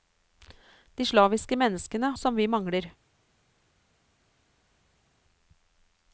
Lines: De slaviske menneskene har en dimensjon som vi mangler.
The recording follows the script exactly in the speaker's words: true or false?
false